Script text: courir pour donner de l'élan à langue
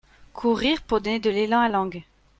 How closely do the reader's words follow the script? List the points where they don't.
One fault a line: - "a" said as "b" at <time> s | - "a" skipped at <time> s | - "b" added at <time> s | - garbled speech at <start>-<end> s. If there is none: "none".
none